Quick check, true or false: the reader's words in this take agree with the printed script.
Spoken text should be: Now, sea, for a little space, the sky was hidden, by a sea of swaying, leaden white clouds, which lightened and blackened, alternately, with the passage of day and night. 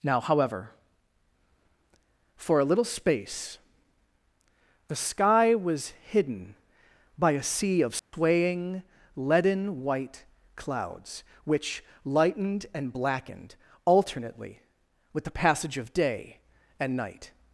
false